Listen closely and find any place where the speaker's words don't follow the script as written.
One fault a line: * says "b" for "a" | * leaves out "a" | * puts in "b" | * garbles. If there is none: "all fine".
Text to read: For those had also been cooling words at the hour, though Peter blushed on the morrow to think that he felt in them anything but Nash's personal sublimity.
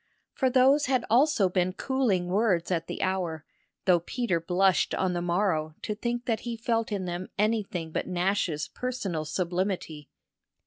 all fine